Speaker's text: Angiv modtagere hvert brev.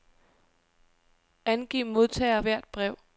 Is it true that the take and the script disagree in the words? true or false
false